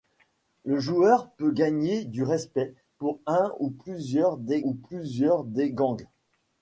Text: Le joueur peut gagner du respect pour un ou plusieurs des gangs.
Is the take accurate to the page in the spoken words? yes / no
no